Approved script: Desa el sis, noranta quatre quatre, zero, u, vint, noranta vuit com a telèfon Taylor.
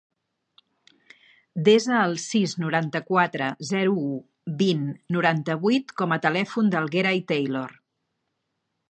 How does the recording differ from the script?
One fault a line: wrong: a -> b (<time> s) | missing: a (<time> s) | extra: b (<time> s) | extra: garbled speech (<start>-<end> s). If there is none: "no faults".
missing: quatre (3.5 s)
extra: del Gerai (6.8 s)